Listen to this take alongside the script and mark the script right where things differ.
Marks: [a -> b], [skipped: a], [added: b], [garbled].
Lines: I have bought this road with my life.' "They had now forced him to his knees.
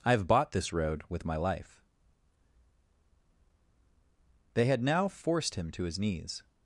I have bought this road with my life.' "They had now forced him to his knees.